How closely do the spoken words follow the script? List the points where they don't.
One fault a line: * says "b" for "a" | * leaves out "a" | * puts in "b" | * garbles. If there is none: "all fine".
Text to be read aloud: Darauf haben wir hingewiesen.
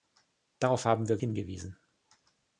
all fine